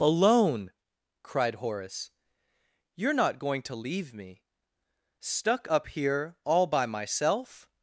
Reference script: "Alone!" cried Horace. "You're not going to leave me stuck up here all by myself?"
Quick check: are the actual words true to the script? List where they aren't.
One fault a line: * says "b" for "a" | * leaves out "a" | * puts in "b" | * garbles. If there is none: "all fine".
all fine